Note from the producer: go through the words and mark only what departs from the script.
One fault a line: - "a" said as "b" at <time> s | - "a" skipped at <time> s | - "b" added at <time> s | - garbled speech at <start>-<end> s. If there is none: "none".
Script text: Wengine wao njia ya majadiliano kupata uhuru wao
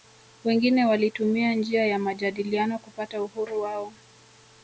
- "wao" said as "walitumia" at 0.8 s